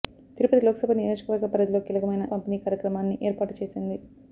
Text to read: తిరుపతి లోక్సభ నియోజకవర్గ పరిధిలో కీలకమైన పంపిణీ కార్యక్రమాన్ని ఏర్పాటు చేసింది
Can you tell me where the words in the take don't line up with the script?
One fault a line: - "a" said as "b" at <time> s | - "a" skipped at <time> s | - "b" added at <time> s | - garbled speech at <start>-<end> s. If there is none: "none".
none